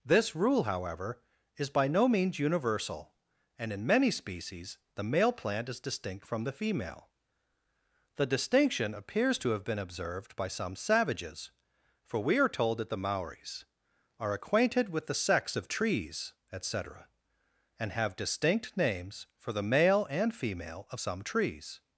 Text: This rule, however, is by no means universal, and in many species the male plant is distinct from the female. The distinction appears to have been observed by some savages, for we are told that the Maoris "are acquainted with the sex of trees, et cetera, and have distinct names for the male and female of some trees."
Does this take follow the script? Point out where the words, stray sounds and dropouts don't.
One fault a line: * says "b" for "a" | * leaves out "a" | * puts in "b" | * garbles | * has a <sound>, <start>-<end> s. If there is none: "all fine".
all fine